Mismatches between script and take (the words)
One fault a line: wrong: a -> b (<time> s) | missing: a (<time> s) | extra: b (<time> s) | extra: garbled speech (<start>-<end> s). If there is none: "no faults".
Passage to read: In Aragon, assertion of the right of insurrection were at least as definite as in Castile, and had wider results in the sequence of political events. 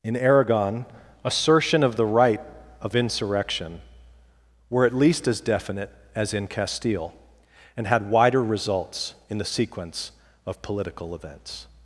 no faults